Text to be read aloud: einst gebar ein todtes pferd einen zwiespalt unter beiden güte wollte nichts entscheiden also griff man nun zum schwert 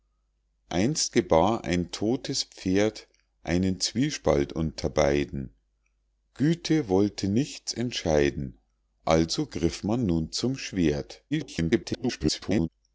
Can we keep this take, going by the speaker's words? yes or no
no